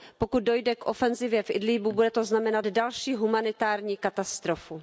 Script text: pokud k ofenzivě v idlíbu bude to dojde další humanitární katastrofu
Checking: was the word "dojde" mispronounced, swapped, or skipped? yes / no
yes